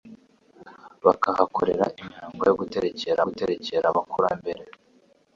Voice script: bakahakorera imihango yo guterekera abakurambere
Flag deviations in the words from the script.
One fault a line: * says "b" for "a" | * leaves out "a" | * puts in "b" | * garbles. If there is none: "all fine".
* puts in "guterekera"